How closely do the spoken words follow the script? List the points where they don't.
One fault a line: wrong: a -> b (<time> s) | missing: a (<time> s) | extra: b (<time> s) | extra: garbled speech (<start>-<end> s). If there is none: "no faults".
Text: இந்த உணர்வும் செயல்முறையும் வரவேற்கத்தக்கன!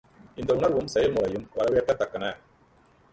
no faults